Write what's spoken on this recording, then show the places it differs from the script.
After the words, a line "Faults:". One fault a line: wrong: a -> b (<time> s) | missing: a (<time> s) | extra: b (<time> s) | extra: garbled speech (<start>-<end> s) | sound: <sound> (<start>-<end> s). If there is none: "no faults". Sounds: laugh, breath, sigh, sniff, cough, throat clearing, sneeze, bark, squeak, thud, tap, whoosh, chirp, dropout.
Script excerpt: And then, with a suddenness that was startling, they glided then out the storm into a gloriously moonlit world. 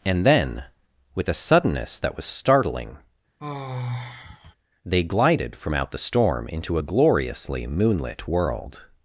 And then, with a suddenness that was startling, they glided from out the storm into a gloriously moonlit world.
Faults:
sound: sigh (3.4-4.5 s)
wrong: then -> from (5.6 s)